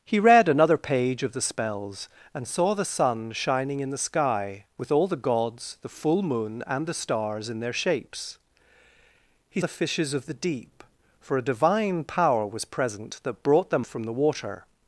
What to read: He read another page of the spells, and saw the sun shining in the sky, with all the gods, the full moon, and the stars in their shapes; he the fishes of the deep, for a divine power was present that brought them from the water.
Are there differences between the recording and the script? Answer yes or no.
no